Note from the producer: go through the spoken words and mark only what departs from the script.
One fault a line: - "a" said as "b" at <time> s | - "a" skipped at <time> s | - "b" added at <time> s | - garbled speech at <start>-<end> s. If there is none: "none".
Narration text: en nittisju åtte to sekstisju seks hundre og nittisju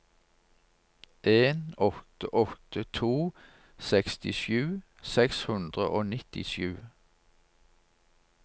- "nittisju" said as "åtte" at 1.8 s